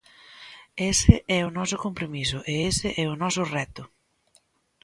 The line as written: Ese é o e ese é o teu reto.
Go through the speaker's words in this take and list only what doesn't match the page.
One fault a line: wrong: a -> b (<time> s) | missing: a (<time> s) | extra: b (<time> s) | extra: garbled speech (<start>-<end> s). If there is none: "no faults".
extra: noso compromiso (1.6 s)
wrong: teu -> noso (3.2 s)